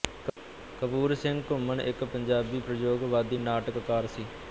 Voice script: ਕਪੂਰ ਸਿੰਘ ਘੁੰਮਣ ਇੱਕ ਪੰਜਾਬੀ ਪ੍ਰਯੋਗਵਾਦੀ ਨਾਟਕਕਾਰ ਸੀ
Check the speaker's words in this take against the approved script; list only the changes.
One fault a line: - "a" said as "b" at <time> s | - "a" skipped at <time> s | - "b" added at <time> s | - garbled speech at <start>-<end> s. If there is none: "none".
none